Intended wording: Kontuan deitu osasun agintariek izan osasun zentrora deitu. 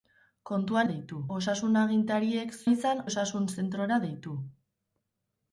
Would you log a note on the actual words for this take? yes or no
no